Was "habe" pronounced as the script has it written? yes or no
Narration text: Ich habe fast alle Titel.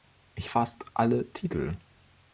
no